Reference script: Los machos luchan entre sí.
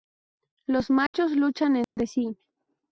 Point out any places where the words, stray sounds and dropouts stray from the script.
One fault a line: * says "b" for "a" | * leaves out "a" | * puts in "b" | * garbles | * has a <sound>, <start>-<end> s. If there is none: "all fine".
* has a dropout, 1.1-1.1 s
* has a dropout, 1.8-2.0 s